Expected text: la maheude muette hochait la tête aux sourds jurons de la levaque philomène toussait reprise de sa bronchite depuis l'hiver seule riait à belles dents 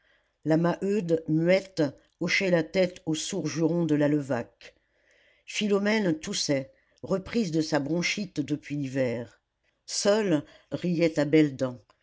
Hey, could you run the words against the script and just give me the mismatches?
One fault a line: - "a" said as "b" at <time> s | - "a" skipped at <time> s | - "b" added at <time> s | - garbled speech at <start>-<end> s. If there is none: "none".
none